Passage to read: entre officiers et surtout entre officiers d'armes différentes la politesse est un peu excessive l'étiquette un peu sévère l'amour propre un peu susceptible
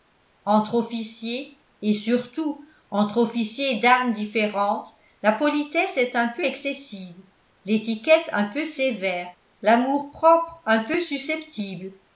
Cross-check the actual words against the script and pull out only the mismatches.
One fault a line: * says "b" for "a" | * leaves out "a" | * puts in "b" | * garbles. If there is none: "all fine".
all fine